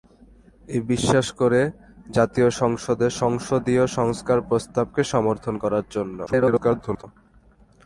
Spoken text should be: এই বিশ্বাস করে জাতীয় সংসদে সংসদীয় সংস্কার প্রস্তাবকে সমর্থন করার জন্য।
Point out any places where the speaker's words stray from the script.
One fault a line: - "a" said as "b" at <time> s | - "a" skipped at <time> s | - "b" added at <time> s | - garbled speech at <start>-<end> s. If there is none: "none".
- garbled speech at 6.3-7.0 s